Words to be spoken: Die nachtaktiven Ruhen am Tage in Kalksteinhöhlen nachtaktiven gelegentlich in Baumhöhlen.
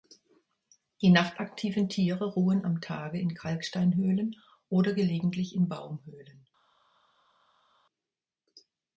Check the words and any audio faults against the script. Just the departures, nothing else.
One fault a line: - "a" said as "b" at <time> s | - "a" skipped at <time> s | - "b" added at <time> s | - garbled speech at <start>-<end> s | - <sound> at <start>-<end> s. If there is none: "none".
- "Tiere" added at 1.9 s
- "nachtaktiven" said as "oder" at 4.7 s